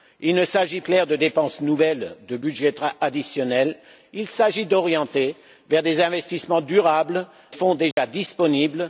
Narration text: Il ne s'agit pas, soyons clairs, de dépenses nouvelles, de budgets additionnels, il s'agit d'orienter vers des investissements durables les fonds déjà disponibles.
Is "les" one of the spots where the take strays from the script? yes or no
yes